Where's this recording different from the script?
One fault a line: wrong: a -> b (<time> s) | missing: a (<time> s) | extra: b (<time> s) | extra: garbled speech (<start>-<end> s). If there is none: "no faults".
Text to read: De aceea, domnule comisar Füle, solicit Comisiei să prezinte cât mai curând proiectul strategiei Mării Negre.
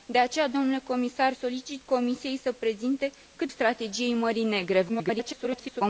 missing: Füle (1.3 s)
missing: mai curând proiectul (3.5 s)
extra: garbled speech (4.9-5.8 s)